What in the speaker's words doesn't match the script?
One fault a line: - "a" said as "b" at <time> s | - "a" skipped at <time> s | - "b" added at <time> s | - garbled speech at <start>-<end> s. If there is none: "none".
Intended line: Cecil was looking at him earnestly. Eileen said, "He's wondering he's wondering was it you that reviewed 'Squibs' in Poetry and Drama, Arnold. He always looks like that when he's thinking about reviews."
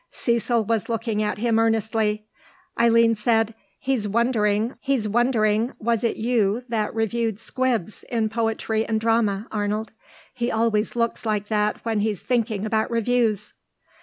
none